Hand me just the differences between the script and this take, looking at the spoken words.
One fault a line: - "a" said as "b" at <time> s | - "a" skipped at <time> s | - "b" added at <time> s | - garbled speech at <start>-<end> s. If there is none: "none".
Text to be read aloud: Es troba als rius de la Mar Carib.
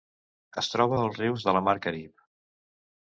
none